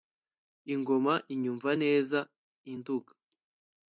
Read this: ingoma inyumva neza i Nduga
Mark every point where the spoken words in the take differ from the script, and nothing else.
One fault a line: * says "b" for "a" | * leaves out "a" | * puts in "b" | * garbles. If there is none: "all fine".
all fine